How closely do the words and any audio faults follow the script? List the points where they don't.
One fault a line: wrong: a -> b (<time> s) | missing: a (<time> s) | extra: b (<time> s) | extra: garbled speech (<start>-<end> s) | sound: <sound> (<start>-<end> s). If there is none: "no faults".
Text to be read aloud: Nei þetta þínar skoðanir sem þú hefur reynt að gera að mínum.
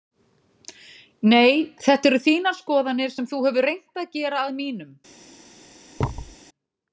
extra: eru (2.1 s)
sound: thud (6.0-6.4 s)